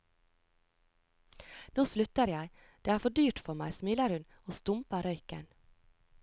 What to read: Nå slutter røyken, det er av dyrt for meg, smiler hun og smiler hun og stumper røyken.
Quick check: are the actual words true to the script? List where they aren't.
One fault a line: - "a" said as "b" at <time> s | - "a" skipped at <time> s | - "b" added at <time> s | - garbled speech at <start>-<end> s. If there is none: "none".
- "røyken" said as "jeg" at 2.3 s
- "av" said as "for" at 3.0 s
- "smiler hun og" skipped at 4.6 s